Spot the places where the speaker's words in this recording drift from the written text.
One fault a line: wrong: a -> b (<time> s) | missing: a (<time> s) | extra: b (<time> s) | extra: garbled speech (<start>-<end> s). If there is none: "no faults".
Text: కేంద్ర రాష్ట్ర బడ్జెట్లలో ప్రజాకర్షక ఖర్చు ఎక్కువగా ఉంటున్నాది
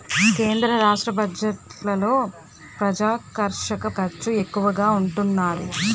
no faults